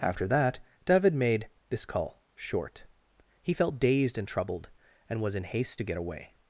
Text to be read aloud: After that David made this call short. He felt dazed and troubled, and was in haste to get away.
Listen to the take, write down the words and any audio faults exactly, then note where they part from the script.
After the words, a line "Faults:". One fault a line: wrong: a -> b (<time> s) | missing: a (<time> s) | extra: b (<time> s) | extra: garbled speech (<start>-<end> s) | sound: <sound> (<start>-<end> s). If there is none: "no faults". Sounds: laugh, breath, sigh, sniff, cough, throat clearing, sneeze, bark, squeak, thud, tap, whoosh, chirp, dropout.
After that David made this call short. He felt dazed and troubled, and was in haste to get away.
Faults:
no faults